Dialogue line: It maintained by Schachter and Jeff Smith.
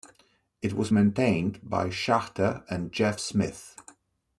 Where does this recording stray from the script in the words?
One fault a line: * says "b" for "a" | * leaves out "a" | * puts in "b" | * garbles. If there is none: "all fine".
* puts in "was"